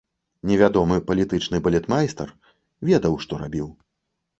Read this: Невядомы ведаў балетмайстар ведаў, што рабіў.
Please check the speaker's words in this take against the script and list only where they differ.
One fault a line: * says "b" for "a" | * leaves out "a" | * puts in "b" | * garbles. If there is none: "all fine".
* says "палітычны" for "ведаў"